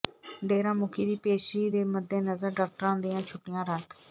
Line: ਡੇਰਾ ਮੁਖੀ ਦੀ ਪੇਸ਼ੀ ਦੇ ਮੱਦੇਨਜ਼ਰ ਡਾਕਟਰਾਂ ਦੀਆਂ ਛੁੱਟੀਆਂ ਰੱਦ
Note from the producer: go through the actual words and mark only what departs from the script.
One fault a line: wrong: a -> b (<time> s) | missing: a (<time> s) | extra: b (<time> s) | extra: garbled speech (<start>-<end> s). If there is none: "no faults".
no faults